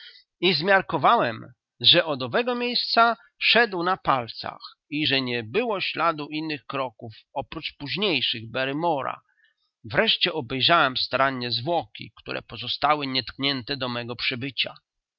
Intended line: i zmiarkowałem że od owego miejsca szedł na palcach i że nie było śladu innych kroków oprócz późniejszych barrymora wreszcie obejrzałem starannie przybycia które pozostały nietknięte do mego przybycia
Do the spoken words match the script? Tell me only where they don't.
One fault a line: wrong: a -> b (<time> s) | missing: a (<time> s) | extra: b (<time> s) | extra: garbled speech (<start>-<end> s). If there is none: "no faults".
wrong: przybycia -> zwłoki (11.5 s)